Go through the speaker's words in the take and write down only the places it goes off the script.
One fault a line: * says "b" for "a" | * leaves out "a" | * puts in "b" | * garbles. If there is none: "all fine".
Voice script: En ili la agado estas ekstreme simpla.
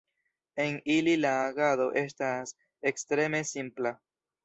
all fine